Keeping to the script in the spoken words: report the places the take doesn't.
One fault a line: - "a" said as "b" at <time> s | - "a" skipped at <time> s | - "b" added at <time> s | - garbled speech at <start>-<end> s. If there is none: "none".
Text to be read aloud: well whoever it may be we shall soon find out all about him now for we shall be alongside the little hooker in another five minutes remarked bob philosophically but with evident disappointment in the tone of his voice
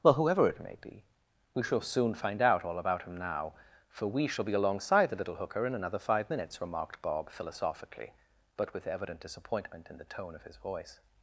none